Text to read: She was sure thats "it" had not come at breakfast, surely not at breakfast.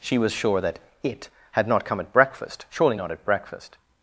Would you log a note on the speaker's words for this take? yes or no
yes